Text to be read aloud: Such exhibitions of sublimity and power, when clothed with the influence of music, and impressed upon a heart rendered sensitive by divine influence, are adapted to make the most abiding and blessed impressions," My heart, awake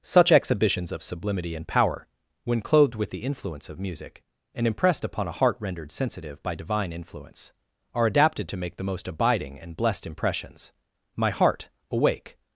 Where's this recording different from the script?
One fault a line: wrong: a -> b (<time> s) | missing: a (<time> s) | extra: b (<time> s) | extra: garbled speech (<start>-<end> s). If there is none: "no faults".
no faults